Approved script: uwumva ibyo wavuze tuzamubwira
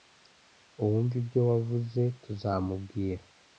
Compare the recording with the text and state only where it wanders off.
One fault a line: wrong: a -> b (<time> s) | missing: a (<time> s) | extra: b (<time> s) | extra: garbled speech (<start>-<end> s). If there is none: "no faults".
no faults